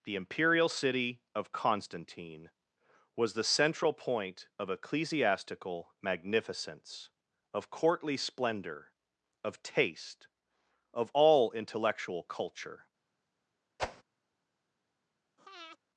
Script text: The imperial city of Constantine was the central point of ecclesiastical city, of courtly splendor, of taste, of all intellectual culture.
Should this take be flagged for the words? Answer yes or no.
yes